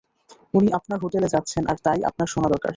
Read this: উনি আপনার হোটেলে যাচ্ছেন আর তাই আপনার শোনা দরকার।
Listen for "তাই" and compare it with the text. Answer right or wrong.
right